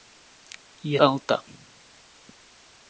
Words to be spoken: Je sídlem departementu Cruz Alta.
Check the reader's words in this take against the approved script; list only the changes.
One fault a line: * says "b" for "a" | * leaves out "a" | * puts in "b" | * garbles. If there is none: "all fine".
* leaves out "sídlem departementu Cruz"